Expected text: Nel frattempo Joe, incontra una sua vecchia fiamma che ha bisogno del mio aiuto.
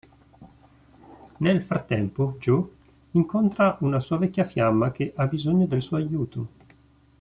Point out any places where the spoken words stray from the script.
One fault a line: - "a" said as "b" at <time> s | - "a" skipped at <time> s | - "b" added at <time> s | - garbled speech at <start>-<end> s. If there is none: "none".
- "mio" said as "suo" at 5.8 s